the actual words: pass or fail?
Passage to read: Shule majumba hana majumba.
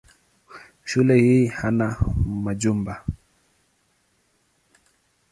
fail